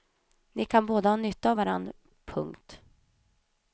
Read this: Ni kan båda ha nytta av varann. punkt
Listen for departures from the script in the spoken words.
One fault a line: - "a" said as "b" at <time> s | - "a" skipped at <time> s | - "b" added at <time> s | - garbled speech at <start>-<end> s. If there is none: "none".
none